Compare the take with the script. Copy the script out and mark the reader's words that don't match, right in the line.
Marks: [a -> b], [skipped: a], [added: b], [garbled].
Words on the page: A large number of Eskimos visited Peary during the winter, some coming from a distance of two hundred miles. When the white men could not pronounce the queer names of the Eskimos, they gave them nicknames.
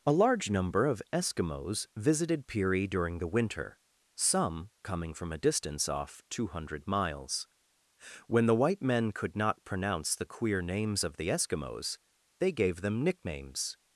A large number of Eskimos visited Peary during the winter, some coming from a distance [of -> off] two hundred miles. When the white men could not pronounce the queer names of the Eskimos, they gave them nicknames.